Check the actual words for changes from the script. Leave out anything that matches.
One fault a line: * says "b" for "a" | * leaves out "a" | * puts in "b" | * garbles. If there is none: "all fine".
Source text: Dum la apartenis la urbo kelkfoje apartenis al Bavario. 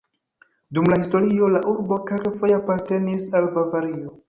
* says "historio" for "apartenis"